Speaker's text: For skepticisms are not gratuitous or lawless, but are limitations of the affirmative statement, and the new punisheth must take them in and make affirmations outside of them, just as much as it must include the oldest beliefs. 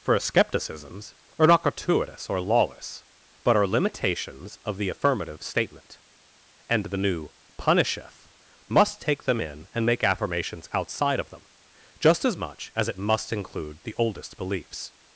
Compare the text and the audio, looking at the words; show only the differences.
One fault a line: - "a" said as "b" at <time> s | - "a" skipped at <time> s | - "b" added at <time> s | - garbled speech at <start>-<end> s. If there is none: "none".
none